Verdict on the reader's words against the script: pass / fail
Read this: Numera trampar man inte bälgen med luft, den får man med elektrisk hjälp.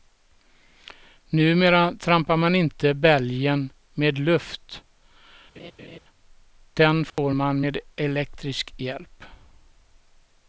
pass